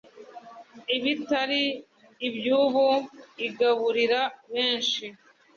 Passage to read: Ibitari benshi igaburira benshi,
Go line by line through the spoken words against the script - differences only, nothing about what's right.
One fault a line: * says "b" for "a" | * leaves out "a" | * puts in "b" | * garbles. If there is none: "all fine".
* says "ibyubu" for "benshi"